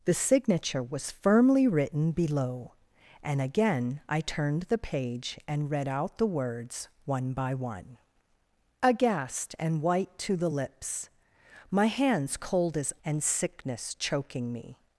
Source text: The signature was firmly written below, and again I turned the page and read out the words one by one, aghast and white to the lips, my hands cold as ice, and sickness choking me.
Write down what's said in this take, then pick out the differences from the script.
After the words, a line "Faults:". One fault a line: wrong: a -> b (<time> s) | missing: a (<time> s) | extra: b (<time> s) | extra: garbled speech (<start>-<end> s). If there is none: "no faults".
The signature was firmly written below, and again I turned the page and read out the words one by one, aghast and white to the lips, my hands cold as and sickness choking me.
Faults:
missing: ice (12.9 s)